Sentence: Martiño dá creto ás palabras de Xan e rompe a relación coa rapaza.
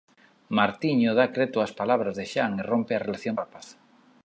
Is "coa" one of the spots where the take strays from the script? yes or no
yes